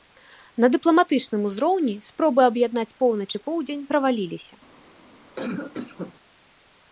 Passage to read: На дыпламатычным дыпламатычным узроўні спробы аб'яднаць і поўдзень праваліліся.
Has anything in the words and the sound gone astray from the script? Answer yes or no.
yes